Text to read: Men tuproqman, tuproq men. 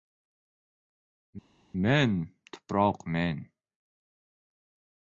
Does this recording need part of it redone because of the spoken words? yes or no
yes